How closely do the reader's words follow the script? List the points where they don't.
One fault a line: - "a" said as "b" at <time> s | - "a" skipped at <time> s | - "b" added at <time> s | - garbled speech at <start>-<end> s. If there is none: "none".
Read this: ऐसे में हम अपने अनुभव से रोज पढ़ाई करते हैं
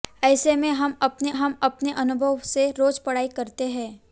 - "हम अपने" added at 1.3 s